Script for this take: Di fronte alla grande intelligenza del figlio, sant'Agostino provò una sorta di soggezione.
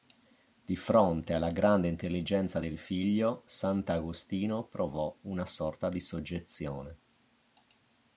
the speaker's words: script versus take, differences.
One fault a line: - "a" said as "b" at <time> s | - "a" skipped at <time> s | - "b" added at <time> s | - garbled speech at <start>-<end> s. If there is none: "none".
none